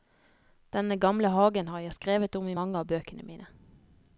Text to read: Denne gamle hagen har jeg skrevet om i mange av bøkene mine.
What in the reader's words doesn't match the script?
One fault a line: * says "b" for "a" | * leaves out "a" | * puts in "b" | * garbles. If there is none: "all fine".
all fine